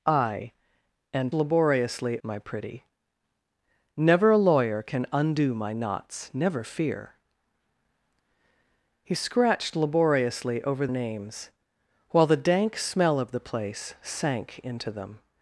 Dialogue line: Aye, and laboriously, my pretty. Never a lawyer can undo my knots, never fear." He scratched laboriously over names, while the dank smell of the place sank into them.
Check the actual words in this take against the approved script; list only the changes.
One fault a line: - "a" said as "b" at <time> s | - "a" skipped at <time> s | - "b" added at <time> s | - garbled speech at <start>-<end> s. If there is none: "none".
none